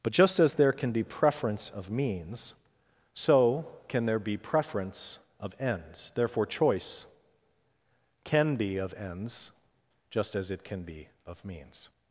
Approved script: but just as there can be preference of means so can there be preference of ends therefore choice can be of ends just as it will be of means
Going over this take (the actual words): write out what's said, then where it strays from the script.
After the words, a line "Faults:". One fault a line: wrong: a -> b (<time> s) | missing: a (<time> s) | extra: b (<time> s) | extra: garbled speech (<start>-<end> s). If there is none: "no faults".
but just as there can be preference of means so can there be preference of ends therefore choice can be of ends just as it can be of means
Faults:
wrong: will -> can (10.6 s)